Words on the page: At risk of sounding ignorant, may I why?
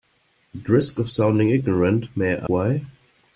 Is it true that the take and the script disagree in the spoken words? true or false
false